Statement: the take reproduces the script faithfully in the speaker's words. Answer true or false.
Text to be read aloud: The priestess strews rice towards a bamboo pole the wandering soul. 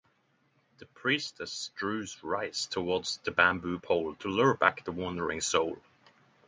false